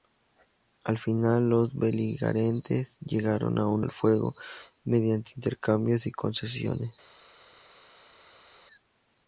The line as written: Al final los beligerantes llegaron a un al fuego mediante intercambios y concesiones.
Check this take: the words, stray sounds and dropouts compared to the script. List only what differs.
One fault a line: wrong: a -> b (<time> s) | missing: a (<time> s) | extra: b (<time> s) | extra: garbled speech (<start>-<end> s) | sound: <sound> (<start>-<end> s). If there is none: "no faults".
no faults